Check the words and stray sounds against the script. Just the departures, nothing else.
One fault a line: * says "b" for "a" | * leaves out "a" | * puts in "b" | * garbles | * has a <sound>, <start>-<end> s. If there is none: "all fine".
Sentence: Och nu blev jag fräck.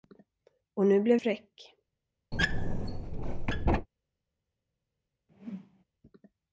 * leaves out "jag"
* has a squeak, 2.3-3.9 s
* has a whoosh, 5.3-5.8 s